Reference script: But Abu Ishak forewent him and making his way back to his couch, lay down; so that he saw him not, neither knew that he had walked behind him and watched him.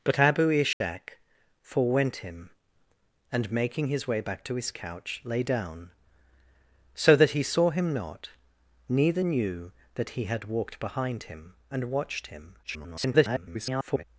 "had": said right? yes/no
yes